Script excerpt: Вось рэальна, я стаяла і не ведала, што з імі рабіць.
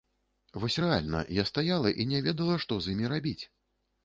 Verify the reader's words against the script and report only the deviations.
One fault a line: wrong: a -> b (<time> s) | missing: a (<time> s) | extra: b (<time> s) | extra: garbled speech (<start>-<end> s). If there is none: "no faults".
no faults